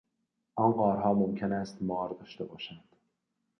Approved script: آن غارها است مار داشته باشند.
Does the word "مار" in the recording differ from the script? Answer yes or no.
no